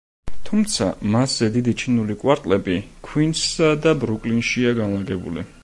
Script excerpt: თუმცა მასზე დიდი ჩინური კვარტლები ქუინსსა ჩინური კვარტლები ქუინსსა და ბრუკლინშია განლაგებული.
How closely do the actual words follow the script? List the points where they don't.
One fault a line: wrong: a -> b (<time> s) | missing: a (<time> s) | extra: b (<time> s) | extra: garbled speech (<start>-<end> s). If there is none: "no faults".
missing: ჩინური კვარტლები ქუინსსა (3.7 s)